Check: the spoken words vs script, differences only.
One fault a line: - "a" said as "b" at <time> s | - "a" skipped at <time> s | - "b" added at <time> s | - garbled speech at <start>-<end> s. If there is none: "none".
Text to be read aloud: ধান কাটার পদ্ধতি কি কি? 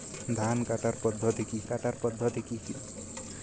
- "কাটার পদ্ধতি কি" added at 1.6 s